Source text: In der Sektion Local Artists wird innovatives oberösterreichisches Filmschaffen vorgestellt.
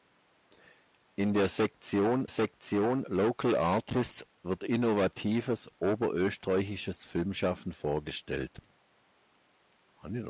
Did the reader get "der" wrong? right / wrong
right